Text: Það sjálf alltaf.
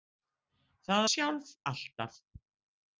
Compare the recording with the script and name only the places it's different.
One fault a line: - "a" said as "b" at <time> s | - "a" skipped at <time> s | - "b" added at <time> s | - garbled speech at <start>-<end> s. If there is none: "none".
none